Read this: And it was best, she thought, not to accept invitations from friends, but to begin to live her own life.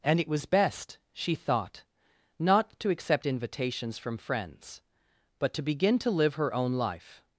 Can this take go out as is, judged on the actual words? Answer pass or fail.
pass